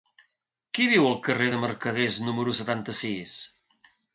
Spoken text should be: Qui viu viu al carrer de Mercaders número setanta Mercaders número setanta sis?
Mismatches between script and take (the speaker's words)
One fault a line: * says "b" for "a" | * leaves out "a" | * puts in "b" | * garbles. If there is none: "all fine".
* leaves out "viu"
* leaves out "Mercaders número setanta"